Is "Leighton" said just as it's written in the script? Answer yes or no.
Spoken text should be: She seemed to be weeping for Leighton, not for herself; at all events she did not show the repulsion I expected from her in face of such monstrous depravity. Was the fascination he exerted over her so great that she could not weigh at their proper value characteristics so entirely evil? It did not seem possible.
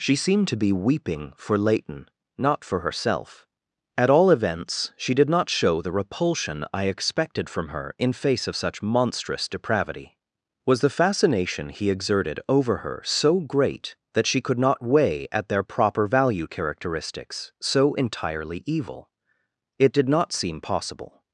yes